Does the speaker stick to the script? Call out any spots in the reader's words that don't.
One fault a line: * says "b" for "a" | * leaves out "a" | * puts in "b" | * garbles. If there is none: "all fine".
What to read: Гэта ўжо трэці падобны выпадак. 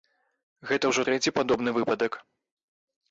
all fine